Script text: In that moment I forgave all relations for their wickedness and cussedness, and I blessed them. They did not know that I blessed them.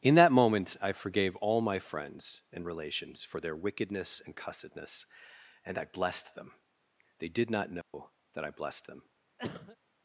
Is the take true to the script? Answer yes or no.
no